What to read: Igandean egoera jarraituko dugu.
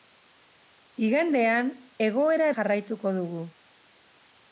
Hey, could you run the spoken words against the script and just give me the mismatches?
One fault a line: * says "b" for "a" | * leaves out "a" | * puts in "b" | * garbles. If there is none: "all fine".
all fine